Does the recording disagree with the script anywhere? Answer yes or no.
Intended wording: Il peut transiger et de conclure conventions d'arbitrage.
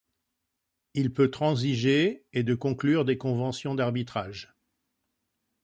yes